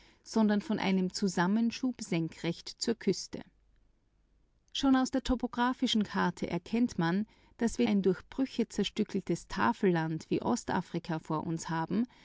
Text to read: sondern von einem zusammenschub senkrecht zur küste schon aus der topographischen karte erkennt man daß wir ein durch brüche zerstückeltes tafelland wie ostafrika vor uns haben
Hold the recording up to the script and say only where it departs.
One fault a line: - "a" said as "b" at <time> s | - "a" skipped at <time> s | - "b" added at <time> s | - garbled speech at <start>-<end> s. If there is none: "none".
none